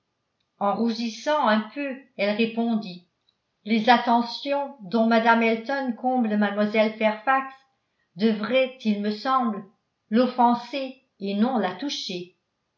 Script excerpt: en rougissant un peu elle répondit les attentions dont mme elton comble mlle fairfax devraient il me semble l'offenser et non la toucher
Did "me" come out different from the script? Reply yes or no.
no